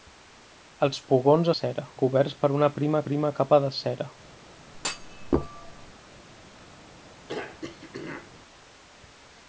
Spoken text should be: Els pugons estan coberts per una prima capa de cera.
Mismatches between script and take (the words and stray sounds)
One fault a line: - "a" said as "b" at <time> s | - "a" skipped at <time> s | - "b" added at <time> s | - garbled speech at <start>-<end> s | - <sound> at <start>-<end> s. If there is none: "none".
- "estan" said as "cera" at 1.6 s
- "prima" added at 3.1 s
- thud at 4.7-5.9 s
- throat clearing at 7.3-8.3 s